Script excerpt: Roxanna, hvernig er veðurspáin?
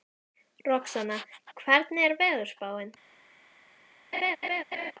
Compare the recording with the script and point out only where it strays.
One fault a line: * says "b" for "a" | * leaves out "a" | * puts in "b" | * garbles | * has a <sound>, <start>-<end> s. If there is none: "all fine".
* has a laugh, 4.1-4.9 s